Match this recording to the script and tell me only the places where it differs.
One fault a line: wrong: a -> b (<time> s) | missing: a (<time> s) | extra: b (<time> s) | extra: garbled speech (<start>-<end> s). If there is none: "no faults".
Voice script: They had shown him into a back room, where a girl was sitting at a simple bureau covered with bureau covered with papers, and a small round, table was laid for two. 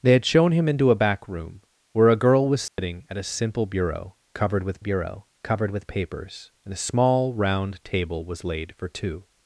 no faults